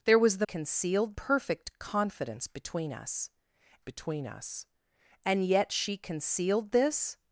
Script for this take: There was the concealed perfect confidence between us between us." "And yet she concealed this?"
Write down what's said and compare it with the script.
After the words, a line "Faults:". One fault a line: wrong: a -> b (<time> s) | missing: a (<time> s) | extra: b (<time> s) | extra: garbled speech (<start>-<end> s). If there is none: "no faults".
There was the concealed perfect confidence between us between us." "And yet she concealed this?"
Faults:
no faults